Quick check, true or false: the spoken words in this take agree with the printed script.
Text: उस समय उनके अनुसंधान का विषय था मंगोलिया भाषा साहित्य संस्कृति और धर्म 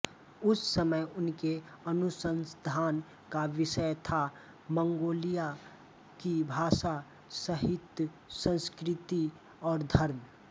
false